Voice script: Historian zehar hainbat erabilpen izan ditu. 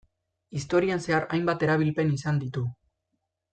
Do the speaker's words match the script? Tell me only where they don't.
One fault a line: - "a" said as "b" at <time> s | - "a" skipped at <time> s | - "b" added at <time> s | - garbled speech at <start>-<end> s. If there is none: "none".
none